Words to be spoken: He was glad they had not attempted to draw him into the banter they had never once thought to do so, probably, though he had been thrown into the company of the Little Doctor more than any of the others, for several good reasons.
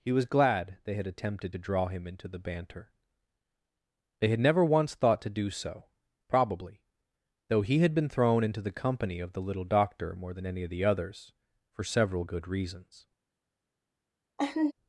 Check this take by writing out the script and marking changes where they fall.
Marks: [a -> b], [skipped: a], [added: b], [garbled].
He was glad they had [skipped: not] attempted to draw him into the banter they had never once thought to do so, probably, though he had been thrown into the company of the Little Doctor more than any of the others, for several good reasons.